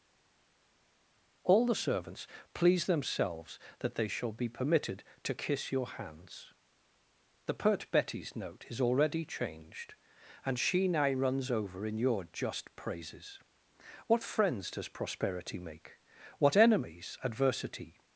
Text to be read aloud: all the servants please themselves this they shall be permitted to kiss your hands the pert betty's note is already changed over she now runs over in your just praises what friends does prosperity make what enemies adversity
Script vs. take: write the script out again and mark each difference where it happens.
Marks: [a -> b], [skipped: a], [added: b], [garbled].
all the servants please themselves [this -> that] they shall be permitted to kiss your hands the pert betty's note is already changed [over -> and] she now runs over in your just praises what friends does prosperity make what enemies adversity